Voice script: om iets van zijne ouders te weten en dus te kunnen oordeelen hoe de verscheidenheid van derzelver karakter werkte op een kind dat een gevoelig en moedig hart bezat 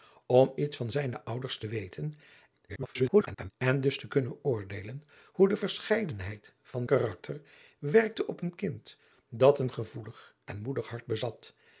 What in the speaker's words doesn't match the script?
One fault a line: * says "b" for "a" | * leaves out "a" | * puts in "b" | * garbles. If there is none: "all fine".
* garbles
* leaves out "derzelver"